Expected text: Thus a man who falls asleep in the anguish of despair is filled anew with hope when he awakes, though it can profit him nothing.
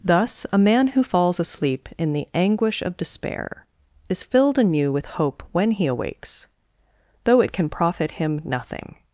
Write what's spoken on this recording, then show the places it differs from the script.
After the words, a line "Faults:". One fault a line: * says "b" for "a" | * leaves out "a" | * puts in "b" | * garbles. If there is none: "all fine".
Thus a man who falls asleep in the anguish of despair is filled anew with hope when he awakes, though it can profit him nothing.
Faults:
all fine